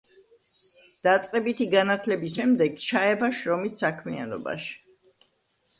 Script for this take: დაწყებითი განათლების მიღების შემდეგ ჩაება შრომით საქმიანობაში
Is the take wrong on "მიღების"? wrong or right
wrong